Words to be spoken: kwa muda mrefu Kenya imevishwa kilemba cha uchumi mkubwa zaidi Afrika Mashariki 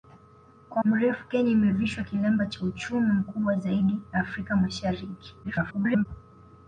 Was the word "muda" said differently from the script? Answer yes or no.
yes